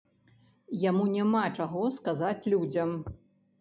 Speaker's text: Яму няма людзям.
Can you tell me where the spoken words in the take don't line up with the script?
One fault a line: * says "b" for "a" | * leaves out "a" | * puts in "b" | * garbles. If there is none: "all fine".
* puts in "чаго сказаць"